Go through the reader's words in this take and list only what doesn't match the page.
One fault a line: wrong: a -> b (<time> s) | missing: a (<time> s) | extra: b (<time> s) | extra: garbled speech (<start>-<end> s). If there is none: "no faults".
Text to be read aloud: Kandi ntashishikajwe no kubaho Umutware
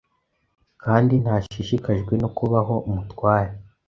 no faults